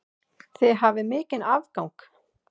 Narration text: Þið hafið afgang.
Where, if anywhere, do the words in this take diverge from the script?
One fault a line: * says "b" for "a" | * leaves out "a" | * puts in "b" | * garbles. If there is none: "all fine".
* puts in "mikinn"